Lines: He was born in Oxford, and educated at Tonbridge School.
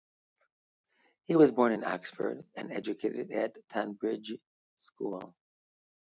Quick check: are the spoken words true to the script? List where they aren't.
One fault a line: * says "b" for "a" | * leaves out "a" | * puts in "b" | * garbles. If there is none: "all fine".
all fine